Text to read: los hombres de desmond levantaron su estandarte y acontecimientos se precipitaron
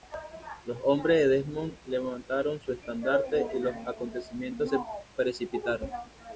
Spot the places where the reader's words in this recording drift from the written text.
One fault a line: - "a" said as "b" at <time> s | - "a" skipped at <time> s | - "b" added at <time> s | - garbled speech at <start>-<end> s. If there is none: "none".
- "los" added at 3.6 s